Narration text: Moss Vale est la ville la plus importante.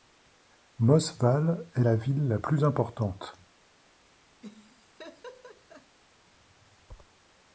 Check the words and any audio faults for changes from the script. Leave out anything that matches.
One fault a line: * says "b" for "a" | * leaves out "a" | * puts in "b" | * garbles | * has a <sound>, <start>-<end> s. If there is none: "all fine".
* has a laugh, 4.4-6.0 s